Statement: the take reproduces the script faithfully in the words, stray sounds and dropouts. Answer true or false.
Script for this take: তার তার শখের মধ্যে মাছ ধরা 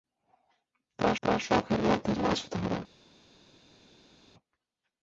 true